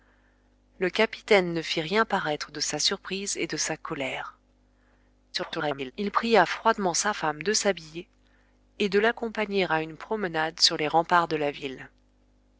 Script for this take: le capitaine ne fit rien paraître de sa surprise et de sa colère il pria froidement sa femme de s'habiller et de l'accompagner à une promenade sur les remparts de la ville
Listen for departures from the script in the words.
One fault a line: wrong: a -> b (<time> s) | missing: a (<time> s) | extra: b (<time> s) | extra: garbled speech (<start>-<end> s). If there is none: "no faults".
extra: garbled speech (5.3-5.9 s)